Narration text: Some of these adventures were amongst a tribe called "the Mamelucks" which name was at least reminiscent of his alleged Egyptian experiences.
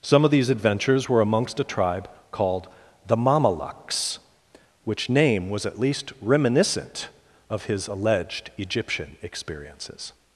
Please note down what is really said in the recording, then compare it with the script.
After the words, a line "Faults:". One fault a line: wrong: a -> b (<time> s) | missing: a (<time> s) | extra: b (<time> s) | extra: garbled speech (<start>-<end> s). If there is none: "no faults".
Some of these adventures were amongst a tribe called "the Mamelucks" which name was at least reminiscent of his alleged Egyptian experiences.
Faults:
no faults